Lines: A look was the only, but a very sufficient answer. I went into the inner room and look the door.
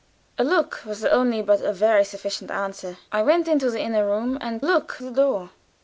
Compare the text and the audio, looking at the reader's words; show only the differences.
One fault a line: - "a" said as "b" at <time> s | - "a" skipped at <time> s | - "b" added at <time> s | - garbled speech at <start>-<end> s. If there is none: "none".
none